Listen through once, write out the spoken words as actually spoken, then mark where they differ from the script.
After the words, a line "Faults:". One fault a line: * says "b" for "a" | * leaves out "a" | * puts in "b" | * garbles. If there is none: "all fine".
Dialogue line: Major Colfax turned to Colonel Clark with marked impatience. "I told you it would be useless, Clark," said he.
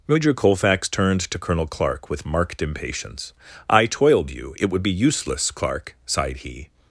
Major Colfax turned to Colonel Clark with marked impatience. "I toiled you it would be useless, Clark," sighed he.
Faults:
* says "toiled" for "told"
* says "sighed" for "said"